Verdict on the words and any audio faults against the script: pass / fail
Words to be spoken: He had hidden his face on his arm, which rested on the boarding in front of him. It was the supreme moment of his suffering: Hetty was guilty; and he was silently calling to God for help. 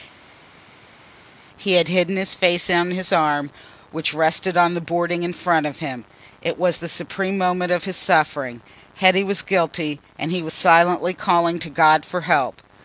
pass